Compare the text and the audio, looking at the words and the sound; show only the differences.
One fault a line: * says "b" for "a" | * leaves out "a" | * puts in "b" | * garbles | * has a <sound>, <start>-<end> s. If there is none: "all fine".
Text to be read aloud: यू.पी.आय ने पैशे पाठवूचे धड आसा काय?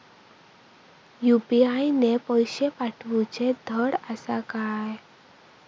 all fine